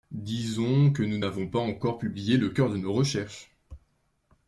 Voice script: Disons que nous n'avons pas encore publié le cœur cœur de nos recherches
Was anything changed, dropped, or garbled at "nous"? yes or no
no